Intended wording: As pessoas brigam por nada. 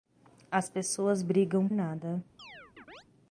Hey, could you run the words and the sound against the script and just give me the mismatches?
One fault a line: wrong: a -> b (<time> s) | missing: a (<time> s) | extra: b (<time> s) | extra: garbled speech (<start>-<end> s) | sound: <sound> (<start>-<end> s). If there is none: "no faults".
missing: por (1.7 s)
sound: chirp (2.4-3.0 s)